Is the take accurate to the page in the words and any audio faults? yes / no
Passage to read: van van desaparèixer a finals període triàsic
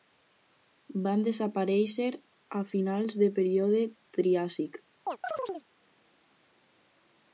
no